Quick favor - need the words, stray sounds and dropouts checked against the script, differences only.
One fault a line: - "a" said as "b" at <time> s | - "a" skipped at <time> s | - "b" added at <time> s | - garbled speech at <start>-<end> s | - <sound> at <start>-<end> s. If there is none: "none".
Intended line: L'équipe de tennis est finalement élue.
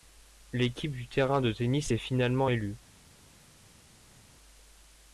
- "du terrain" added at 0.9 s